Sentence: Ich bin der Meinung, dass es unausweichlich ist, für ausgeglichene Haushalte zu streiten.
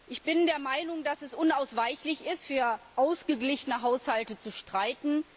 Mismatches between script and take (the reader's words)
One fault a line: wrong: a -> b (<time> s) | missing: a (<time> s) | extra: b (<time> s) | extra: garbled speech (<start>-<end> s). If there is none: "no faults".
no faults